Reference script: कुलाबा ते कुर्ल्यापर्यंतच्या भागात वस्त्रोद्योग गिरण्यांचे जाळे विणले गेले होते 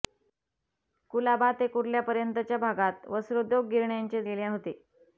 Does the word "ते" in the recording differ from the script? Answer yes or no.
no